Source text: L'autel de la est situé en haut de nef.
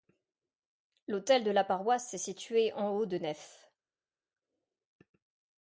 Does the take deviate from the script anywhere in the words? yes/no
yes